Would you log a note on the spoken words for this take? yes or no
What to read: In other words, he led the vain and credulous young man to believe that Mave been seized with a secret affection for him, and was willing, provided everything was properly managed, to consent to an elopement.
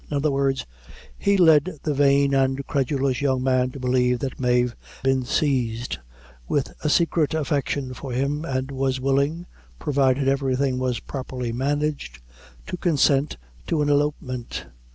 no